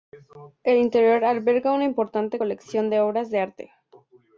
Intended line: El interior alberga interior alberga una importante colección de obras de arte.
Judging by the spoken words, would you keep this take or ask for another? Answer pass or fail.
fail